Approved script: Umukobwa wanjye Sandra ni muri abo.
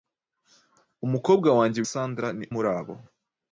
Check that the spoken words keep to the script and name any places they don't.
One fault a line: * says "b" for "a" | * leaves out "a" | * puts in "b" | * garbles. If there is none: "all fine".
all fine